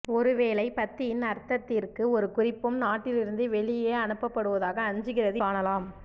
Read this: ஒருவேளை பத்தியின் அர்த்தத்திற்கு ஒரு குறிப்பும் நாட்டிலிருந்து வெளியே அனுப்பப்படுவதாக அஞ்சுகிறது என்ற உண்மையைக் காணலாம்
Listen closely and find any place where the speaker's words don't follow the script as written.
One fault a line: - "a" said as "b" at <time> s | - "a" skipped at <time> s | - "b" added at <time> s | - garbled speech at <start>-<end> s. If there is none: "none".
- "என்ற உண்மையைக்" skipped at 5.4 s